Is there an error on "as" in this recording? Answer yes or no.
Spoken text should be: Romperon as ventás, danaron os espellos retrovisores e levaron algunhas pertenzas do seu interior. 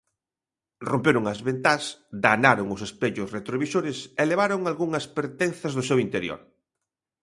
no